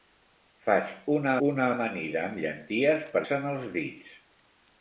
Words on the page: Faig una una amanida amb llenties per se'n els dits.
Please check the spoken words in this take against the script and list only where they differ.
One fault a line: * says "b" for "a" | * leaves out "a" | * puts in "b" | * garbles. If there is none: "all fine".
all fine